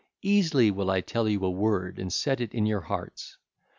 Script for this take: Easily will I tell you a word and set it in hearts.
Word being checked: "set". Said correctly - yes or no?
yes